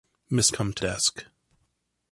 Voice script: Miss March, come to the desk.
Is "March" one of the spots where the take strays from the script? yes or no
yes